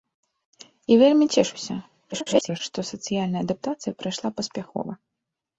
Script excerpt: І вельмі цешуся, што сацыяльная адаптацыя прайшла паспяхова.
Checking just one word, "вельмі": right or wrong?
right